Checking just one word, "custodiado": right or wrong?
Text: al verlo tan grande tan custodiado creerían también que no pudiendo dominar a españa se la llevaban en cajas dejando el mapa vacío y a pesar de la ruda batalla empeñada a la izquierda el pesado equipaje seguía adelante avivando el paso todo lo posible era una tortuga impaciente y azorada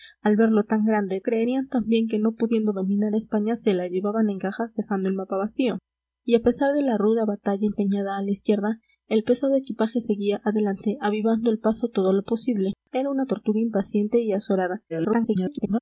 wrong